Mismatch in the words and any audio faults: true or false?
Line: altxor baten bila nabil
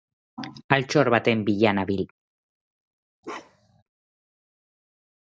true